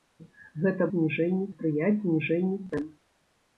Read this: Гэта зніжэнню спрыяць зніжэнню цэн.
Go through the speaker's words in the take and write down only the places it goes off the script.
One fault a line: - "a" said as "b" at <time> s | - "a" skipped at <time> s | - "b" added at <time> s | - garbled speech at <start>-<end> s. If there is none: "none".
none